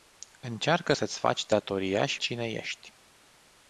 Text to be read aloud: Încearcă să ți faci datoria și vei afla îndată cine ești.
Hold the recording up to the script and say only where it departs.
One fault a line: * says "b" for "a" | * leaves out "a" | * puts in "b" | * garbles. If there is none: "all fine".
* leaves out "vei afla îndată"